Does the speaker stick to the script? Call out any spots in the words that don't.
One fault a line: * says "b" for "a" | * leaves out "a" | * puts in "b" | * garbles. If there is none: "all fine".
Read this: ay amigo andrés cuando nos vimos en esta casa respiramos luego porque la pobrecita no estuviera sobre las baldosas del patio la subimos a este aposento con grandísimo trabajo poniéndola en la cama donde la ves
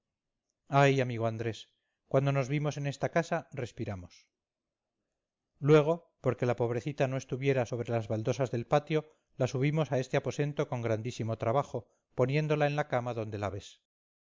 all fine